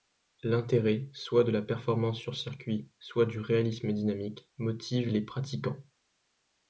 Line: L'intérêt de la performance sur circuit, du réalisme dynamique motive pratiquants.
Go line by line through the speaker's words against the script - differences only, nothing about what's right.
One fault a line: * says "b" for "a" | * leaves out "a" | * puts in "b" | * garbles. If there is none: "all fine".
* puts in "soit"
* puts in "soit"
* puts in "les"